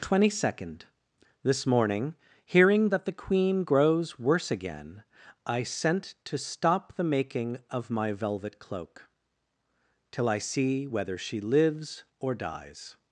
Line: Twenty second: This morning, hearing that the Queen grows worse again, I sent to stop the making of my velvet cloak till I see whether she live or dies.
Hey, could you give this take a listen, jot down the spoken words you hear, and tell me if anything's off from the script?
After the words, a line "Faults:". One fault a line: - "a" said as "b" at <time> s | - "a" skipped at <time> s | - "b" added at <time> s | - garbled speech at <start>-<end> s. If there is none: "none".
Twenty second: This morning, hearing that the Queen grows worse again, I sent to stop the making of my velvet cloak till I see whether she lives or dies.
Faults:
- "live" said as "lives" at 11.4 s